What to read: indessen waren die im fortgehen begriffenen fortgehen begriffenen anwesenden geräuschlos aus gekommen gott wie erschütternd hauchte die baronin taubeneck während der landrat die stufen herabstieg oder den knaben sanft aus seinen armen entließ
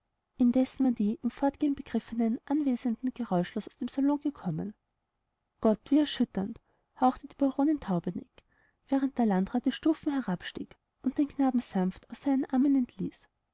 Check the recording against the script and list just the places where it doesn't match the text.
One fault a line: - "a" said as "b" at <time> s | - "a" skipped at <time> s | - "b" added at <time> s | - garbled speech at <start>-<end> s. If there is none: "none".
- "fortgehen begriffenen" skipped at 2.4 s
- "dem salon" added at 3.8 s
- "oder" said as "und" at 11.0 s